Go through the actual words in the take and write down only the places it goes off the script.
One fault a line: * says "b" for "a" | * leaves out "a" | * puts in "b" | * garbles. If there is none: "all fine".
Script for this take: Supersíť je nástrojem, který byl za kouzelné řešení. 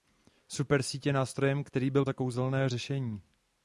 all fine